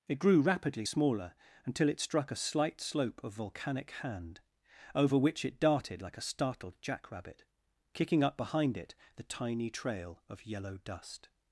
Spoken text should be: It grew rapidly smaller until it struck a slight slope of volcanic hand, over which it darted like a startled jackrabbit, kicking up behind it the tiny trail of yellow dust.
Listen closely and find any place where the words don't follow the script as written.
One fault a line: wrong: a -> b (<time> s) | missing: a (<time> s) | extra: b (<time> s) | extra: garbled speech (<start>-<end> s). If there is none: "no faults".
no faults